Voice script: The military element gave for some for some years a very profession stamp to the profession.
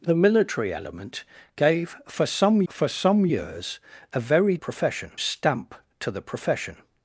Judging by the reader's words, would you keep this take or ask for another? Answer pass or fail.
pass